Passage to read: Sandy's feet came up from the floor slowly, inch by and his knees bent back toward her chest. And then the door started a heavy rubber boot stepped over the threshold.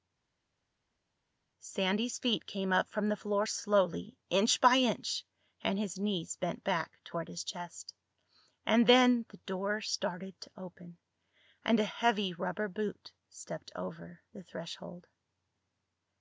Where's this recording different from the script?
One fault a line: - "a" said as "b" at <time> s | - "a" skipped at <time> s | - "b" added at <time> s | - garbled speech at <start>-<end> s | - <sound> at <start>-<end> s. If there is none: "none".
- "inch" added at 4.8 s
- "her" said as "his" at 7.3 s
- "to open and" added at 10.4 s